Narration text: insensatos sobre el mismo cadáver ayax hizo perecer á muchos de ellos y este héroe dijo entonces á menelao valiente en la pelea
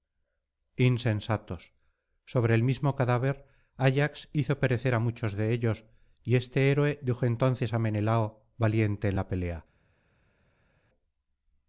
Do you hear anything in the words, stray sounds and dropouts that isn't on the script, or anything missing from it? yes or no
no